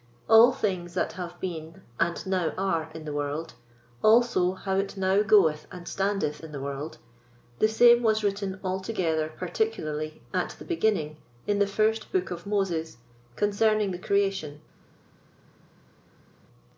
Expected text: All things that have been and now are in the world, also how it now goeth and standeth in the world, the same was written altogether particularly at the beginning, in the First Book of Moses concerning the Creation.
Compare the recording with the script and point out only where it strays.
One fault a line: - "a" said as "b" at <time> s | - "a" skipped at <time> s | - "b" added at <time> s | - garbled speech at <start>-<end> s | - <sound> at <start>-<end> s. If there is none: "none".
none